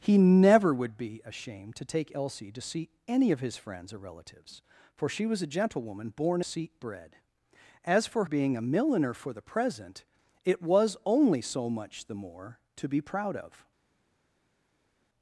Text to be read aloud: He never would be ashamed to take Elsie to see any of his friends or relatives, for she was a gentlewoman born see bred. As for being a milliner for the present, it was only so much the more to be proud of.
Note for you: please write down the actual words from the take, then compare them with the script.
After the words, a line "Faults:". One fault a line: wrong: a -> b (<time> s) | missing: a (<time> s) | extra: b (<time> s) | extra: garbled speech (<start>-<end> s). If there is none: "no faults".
He never would be ashamed to take Elsie to see any of his friends or relatives, for she was a gentlewoman born see bred. As for being a milliner for the present, it was only so much the more to be proud of.
Faults:
no faults